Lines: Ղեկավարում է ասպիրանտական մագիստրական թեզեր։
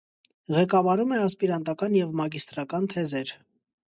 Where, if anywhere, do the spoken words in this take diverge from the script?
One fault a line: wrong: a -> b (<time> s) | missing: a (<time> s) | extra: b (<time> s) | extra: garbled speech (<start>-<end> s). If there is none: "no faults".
extra: և (2.0 s)